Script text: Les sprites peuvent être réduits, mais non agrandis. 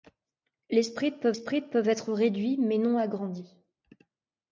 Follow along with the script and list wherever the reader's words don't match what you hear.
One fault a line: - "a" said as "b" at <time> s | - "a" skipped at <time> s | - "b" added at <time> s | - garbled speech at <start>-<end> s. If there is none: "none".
- "sprites peuvent" added at 1.3 s